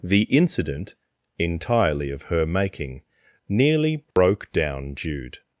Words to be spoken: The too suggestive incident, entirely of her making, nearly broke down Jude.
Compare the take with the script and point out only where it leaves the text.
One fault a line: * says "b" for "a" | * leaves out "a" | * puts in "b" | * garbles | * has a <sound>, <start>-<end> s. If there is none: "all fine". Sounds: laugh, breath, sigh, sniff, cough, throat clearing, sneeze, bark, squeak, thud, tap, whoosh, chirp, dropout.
* leaves out "too suggestive"
* has a dropout, 4.1-4.2 s